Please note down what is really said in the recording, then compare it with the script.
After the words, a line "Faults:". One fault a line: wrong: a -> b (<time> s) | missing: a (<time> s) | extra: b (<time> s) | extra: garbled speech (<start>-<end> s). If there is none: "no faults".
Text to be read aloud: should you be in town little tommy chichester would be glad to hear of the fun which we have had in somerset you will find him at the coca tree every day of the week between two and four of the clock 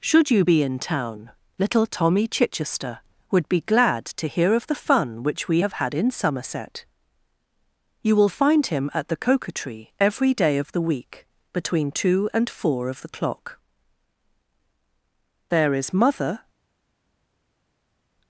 should you be in town little tommy chichester would be glad to hear of the fun which we have had in somerset you will find him at the coca tree every day of the week between two and four of the clock there is mother
Faults:
extra: there is mother (15.5 s)